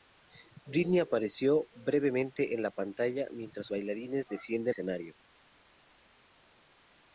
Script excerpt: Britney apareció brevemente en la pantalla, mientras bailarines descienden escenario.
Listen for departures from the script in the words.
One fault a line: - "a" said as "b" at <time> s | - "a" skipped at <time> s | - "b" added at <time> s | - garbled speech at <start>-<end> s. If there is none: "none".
none